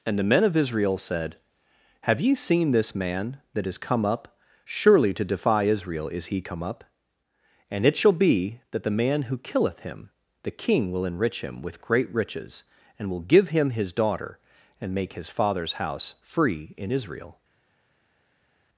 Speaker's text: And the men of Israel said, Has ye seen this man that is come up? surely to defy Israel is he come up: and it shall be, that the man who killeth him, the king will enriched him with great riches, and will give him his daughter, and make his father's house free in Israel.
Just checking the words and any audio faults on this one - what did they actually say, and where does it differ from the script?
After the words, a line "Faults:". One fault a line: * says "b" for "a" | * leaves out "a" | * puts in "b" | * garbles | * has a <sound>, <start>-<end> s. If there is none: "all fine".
And the men of Israel said, Have ye seen this man that is come up? surely to defy Israel is he come up: and it shall be, that the man who killeth him, the king will enrich him with great riches, and will give him his daughter, and make his father's house free in Israel.
Faults:
* says "Have" for "Has"
* says "enrich" for "enriched"